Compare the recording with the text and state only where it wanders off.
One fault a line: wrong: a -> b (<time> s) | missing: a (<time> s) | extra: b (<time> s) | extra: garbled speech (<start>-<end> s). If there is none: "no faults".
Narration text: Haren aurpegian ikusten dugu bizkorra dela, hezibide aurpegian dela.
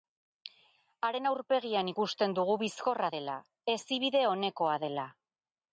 wrong: aurpegian -> onekoa (4.4 s)